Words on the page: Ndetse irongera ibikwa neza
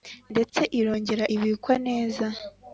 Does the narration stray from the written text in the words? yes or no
no